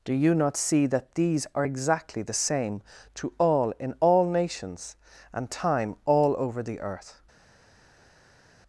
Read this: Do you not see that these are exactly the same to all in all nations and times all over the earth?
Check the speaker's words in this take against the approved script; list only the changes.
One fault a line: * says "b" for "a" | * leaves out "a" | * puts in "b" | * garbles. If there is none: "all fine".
* says "time" for "times"